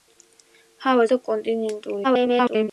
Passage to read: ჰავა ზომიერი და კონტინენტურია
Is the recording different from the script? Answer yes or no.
yes